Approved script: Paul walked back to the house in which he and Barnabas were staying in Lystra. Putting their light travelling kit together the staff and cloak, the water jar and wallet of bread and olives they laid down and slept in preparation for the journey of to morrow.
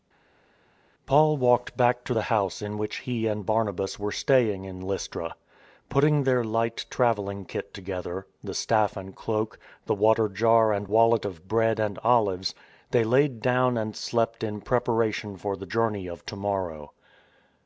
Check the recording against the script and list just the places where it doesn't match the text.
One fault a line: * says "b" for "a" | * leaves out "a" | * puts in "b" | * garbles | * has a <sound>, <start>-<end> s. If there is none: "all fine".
all fine